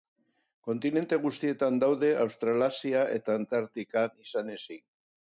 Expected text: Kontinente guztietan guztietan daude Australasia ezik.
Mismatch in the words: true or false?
true